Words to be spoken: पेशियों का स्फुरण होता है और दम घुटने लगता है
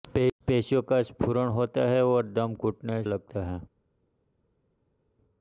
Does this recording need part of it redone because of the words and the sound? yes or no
no